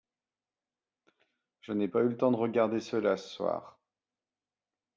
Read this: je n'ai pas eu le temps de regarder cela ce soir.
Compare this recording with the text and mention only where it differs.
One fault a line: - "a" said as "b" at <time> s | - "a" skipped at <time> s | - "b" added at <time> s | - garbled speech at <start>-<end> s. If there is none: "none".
none